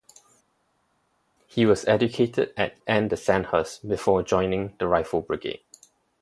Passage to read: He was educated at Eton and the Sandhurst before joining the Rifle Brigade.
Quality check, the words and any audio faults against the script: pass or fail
fail